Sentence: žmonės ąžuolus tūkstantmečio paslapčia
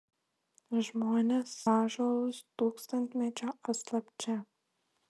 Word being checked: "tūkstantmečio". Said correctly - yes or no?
yes